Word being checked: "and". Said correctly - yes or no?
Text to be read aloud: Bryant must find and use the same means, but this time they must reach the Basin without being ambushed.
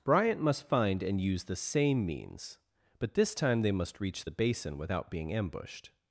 yes